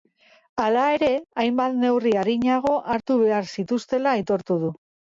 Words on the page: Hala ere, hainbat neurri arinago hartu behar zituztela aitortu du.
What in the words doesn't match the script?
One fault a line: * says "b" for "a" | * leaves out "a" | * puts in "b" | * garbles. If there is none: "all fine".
all fine